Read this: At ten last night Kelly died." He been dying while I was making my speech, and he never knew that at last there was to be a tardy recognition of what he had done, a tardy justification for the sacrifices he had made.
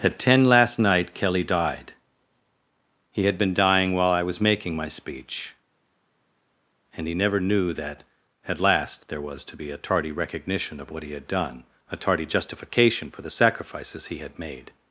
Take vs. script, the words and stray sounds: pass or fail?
fail